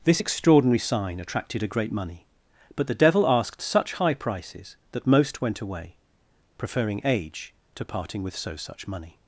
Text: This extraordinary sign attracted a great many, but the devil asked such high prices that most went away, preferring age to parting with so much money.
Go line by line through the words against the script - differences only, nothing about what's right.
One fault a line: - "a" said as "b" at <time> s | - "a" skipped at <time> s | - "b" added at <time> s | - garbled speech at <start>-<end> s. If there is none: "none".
- "many" said as "money" at 1.9 s
- "much" said as "such" at 8.5 s